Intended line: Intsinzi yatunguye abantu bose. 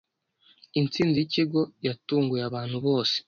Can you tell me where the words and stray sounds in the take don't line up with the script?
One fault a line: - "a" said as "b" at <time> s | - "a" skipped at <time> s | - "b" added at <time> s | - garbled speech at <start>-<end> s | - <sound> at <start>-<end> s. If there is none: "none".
- "yikigo" added at 1.2 s